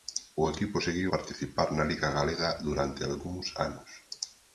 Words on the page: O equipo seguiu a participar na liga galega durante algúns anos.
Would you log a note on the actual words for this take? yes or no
yes